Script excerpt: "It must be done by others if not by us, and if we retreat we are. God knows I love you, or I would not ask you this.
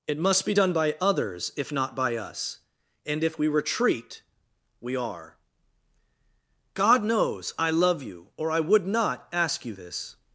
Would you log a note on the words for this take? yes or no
no